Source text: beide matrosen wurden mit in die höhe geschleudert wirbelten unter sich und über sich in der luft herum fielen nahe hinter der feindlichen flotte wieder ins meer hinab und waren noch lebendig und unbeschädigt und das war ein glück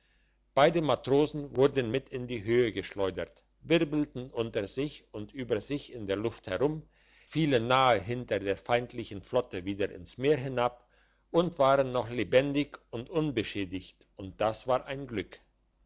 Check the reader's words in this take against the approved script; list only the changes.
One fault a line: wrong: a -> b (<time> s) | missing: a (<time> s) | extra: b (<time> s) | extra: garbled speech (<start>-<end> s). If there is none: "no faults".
no faults